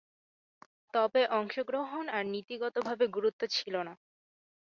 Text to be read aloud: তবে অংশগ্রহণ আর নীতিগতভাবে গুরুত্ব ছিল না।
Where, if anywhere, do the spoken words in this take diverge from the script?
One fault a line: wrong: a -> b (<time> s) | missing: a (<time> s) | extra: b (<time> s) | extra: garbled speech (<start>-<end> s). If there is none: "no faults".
no faults